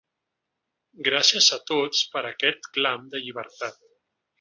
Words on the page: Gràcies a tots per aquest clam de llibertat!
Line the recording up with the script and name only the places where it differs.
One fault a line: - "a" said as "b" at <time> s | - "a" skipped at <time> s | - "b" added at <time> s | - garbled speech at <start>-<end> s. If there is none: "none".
none